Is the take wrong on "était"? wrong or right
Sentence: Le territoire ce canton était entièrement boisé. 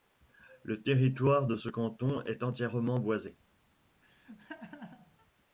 wrong